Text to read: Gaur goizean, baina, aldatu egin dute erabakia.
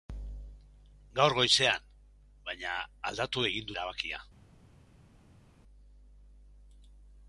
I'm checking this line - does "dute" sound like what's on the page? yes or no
no